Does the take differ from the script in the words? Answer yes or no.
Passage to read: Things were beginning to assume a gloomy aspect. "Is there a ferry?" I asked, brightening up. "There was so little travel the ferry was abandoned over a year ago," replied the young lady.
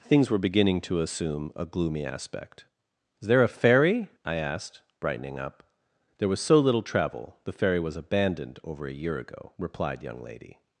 yes